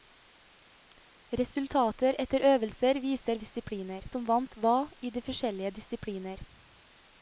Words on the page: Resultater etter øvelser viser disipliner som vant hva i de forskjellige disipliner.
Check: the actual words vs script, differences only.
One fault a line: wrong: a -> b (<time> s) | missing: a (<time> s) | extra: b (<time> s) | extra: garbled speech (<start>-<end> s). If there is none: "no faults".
no faults